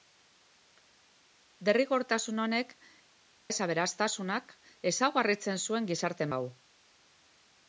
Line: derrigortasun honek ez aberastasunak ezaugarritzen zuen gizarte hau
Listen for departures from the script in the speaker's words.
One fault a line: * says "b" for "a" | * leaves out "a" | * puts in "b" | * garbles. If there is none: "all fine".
all fine